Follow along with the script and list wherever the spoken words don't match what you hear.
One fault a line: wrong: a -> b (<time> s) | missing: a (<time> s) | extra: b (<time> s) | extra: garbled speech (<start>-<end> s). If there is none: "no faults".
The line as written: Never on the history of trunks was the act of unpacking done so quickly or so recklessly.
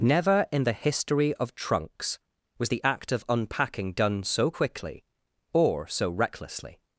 wrong: on -> in (0.5 s)